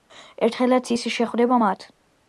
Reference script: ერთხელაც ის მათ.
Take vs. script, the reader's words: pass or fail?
fail